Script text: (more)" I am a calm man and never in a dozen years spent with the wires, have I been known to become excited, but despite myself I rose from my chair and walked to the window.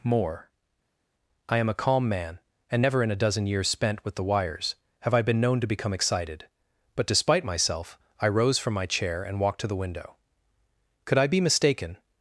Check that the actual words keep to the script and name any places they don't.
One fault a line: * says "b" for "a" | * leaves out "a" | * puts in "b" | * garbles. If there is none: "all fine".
* puts in "Could I be mistaken"